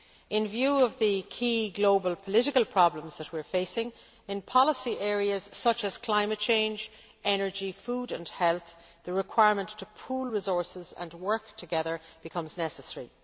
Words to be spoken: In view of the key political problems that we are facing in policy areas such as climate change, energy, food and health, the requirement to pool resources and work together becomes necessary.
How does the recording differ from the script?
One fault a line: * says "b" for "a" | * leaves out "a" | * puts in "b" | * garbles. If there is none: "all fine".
* puts in "global"